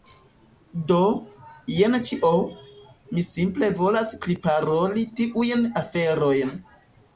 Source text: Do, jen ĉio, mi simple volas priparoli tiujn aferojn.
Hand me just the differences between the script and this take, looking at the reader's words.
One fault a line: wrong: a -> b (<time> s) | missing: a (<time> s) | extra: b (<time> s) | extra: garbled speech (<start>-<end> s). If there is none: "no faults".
no faults